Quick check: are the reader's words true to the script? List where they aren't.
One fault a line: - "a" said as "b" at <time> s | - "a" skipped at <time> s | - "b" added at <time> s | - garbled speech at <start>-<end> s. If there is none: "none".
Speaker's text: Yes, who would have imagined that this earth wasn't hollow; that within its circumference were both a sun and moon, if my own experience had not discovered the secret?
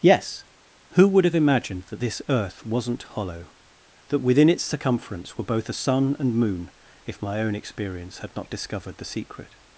none